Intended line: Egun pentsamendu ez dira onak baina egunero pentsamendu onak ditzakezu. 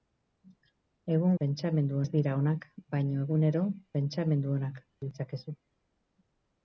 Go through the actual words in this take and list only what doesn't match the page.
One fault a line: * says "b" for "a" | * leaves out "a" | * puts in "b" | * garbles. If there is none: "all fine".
all fine